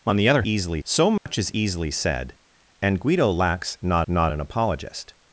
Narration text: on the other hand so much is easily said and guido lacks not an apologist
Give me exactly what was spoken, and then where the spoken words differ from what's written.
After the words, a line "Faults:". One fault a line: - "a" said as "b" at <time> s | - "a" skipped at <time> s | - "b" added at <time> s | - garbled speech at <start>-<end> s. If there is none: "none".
on the other easily so much is easily said and guido lacks not not an apologist
Faults:
- "hand" said as "easily" at 0.4 s
- "not" added at 4.1 s